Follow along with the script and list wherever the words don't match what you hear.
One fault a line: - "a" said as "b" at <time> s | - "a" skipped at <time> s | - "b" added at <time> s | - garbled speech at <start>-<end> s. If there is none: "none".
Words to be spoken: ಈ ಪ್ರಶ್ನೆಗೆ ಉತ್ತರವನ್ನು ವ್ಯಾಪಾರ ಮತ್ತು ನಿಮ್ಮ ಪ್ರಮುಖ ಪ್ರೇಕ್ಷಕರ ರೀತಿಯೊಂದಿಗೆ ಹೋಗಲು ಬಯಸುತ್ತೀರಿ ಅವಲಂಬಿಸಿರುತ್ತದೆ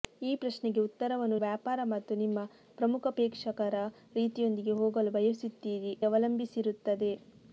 none